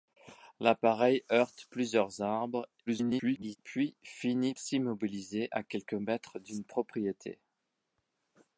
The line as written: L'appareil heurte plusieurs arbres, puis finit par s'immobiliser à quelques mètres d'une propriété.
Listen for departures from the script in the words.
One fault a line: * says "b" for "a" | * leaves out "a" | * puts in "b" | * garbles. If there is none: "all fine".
* garbles
* leaves out "par"